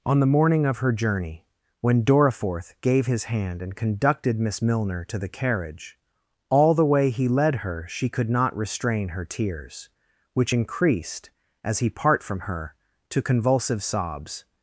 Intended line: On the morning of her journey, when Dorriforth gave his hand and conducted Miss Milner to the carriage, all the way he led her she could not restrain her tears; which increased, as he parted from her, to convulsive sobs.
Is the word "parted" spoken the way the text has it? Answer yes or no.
no